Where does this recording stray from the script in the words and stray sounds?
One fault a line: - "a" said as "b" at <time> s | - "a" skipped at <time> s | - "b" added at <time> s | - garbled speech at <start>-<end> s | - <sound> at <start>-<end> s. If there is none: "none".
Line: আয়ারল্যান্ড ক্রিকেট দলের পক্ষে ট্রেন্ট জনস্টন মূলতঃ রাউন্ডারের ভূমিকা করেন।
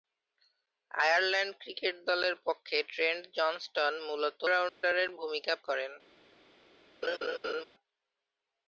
- dropout at 4.7-4.8 s
- laugh at 7.0-7.6 s